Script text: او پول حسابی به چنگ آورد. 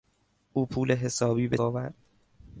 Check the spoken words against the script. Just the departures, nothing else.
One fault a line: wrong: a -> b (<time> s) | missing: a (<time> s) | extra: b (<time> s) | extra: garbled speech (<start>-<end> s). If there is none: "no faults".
missing: چنگ (1.6 s)